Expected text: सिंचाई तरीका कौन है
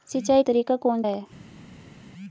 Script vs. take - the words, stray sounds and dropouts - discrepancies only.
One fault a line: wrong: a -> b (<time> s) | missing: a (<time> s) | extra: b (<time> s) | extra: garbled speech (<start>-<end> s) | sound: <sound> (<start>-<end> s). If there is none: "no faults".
no faults